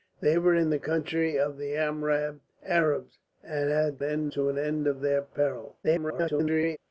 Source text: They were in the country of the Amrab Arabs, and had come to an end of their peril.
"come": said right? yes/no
no